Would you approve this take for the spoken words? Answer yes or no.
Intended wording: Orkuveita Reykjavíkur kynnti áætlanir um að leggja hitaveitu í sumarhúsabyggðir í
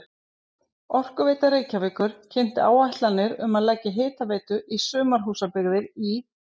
yes